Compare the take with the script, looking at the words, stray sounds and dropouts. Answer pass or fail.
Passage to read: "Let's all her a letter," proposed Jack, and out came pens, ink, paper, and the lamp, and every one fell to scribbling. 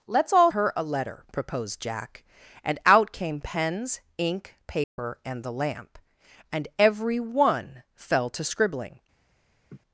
fail